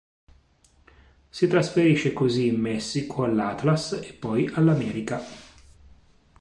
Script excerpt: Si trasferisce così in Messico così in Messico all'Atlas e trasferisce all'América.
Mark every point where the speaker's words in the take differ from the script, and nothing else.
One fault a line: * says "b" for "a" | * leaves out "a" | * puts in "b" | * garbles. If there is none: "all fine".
* leaves out "così in Messico"
* says "poi" for "trasferisce"